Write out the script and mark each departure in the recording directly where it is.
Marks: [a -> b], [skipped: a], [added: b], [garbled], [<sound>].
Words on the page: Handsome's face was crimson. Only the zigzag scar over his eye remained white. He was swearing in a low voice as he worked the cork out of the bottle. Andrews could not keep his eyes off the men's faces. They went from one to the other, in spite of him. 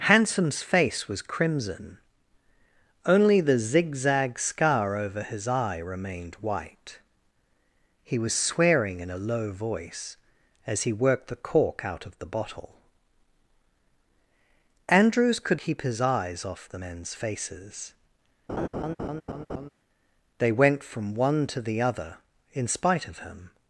Handsome's face was crimson. Only the zigzag scar over his eye remained white. He was swearing in a low voice as he worked the cork out of the bottle. Andrews could [skipped: not] keep his eyes off the men's faces. [laugh] They went from one to the other, in spite of him.